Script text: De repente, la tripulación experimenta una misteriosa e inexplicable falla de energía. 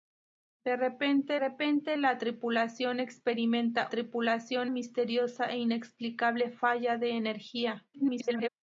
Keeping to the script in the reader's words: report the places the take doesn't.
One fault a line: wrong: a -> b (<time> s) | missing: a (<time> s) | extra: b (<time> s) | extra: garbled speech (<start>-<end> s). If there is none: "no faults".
extra: repente (1.4 s)
wrong: una -> tripulación (3.9 s)
extra: garbled speech (7.9-8.5 s)